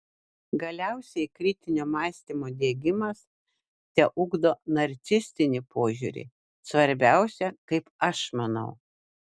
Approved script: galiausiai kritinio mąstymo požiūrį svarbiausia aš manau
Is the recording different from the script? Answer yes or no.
yes